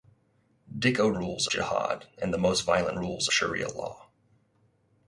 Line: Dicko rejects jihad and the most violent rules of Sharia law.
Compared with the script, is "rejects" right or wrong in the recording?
wrong